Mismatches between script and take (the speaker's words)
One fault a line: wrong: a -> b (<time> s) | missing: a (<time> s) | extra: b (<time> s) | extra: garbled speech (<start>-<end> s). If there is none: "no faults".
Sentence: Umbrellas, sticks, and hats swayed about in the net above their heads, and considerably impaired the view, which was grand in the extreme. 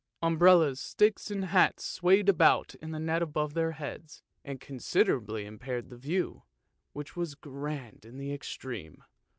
no faults